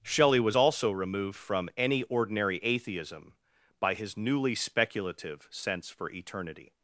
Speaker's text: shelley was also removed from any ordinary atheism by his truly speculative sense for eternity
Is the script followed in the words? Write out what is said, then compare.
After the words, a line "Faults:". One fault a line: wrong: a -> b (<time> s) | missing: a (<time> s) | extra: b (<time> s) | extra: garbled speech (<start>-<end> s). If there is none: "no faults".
shelley was also removed from any ordinary atheism by his newly speculative sense for eternity
Faults:
wrong: truly -> newly (4.2 s)